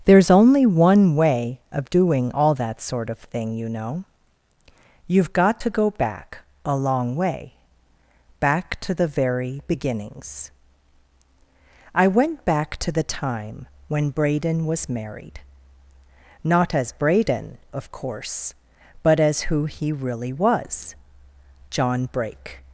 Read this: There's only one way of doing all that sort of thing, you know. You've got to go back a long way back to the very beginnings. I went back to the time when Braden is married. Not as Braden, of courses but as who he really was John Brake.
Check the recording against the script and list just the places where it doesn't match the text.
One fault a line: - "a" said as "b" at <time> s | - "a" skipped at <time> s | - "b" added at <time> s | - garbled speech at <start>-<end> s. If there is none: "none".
- "is" said as "was" at 14.7 s
- "courses" said as "course" at 17.9 s